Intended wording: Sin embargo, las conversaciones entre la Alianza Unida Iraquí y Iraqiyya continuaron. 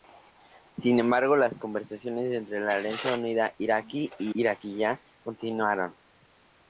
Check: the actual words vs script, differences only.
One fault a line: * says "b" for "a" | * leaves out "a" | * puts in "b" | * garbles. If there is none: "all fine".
all fine